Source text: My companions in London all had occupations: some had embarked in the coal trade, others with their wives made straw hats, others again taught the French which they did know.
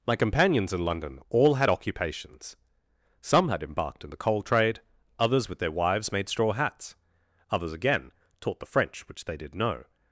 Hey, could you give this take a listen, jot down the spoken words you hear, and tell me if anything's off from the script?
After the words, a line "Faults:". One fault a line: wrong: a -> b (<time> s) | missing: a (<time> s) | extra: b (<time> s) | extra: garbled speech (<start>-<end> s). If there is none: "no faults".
My companions in London all had occupations: some had embarked in the coal trade, others with their wives made straw hats, others again taught the French which they did know.
Faults:
no faults